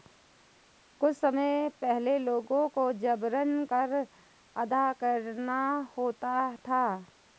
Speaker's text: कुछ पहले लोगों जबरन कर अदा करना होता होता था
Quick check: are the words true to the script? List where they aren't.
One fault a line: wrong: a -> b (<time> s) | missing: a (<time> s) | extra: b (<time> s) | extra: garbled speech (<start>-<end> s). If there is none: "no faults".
extra: समय (1.1 s)
extra: को (2.7 s)
missing: होता (6.6 s)